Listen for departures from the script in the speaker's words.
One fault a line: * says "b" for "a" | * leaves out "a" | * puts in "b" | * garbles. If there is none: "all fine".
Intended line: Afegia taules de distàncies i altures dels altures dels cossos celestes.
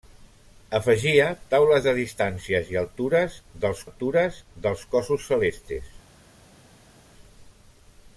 all fine